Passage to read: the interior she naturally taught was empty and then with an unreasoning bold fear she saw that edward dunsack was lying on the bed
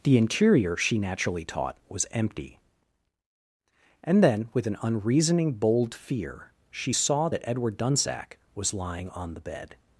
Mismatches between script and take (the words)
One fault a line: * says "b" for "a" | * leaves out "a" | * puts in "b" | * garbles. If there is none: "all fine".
all fine